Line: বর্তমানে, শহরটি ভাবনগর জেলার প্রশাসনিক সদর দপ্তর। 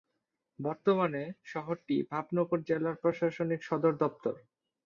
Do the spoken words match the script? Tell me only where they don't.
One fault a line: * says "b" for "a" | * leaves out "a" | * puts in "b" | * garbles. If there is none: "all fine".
all fine